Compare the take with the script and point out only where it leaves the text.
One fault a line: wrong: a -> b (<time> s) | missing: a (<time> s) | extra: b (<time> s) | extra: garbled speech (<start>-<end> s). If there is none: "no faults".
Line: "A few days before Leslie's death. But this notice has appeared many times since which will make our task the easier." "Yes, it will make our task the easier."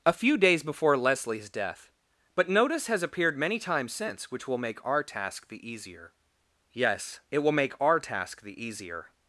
missing: this (2.5 s)